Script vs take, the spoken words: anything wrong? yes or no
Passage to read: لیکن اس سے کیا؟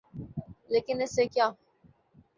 no